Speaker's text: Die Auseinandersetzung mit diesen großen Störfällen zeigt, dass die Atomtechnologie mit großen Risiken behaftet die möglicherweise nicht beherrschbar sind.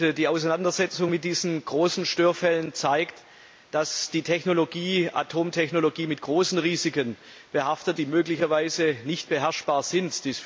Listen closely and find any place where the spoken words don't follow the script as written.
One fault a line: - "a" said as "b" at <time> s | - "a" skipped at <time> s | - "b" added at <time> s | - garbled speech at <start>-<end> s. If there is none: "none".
none